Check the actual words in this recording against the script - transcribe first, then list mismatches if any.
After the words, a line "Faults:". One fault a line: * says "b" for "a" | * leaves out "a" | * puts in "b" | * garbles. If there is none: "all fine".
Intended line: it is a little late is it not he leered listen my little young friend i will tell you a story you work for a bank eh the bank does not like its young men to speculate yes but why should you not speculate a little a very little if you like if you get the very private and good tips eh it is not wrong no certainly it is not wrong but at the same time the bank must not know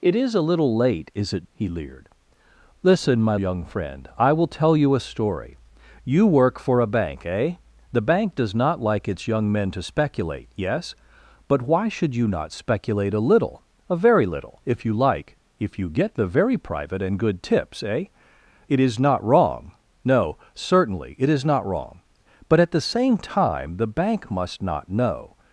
it is a little late is it he leered listen my young friend i will tell you a story you work for a bank eh the bank does not like its young men to speculate yes but why should you not speculate a little a very little if you like if you get the very private and good tips eh it is not wrong no certainly it is not wrong but at the same time the bank must not know
Faults:
* leaves out "not"
* leaves out "little"